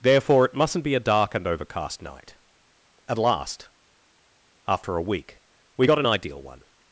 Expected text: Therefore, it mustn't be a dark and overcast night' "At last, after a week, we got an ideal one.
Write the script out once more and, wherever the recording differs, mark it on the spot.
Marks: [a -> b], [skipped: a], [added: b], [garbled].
Therefore, it mustn't be a dark and overcast night' "At last, after a week, we got an ideal one.